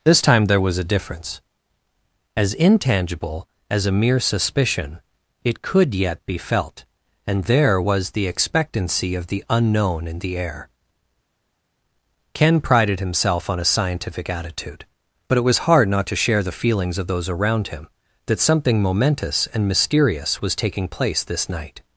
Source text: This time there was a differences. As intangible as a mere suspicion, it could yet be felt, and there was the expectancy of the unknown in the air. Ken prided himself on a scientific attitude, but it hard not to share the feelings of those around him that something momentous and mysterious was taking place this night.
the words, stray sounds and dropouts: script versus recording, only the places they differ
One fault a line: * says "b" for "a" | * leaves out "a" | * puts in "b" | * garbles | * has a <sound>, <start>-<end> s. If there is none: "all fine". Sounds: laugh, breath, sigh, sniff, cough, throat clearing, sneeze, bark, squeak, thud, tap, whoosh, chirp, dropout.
* says "difference" for "differences"
* puts in "was"